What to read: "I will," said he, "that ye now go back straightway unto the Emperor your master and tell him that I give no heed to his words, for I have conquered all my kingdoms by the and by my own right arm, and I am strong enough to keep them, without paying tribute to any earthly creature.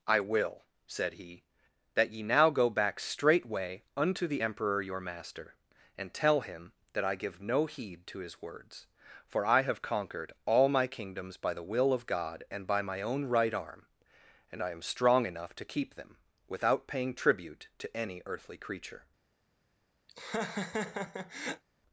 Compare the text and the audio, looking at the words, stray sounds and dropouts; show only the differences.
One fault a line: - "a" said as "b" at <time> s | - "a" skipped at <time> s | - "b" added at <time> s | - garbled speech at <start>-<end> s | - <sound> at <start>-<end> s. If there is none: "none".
- "will of God" added at 11.7 s
- laugh at 20.1-21.6 s